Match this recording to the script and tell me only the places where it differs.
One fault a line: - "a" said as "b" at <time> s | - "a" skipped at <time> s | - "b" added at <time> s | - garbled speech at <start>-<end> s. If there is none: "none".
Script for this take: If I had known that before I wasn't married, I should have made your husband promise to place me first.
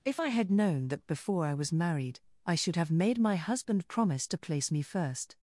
- "wasn't" said as "was" at 1.5 s
- "your" said as "my" at 3.2 s